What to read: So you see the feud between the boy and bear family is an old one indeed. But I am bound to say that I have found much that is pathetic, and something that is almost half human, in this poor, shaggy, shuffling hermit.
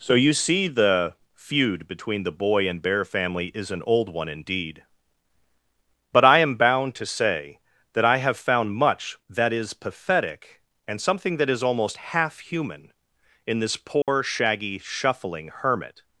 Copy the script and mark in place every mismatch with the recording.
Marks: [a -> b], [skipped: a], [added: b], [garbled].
So you see the feud between the boy and bear family is an old one indeed. But I am bound to say that I have found much that is pathetic, and something that is almost half human, in this poor, shaggy, shuffling hermit.